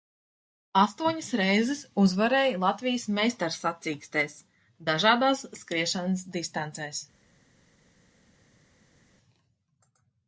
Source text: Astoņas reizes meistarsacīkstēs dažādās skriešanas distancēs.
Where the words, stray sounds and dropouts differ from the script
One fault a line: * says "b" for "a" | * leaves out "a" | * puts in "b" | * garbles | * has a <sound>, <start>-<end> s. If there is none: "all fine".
* puts in "uzvarēja Latvijas"